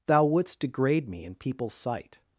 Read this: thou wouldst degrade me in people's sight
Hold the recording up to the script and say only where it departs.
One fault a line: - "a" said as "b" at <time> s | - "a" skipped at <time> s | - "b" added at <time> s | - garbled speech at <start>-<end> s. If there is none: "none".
none